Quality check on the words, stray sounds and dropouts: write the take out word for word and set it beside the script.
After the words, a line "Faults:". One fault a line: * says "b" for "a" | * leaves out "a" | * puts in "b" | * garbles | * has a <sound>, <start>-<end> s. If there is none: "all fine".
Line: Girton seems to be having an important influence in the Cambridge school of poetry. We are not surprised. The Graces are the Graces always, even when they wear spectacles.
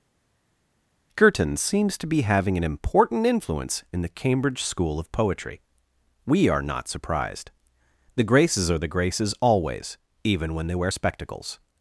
Girton seems to be having an important influence in the Cambridge school of poetry. We are not surprised. The Graces are the Graces always, even when they wear spectacles.
Faults:
all fine